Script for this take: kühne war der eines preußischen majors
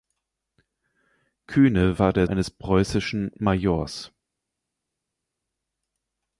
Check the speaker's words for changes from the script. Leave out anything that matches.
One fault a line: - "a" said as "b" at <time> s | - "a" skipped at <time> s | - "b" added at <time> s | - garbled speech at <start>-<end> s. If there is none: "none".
none